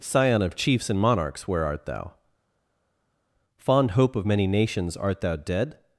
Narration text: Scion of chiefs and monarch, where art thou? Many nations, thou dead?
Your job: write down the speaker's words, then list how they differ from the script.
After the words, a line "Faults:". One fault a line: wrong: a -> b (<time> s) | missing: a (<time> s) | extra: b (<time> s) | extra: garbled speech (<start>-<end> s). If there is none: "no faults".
Scion of chiefs and monarchs, where art thou? Fond hope of many nations, art thou dead?
Faults:
wrong: monarch -> monarchs (1.0 s)
extra: Fond hope of (3.6 s)
extra: art (5.0 s)